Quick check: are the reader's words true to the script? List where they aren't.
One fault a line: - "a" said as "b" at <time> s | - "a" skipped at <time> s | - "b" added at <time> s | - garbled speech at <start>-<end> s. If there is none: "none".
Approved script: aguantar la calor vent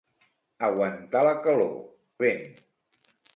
none